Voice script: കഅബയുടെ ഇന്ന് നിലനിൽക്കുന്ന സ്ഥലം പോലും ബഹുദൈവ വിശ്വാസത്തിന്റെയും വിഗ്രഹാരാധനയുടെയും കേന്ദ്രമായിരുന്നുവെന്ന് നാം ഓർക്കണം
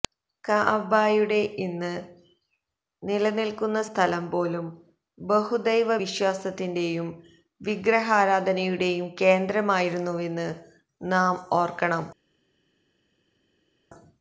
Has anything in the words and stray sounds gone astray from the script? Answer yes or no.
no